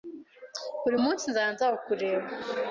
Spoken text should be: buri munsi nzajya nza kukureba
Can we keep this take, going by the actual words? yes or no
yes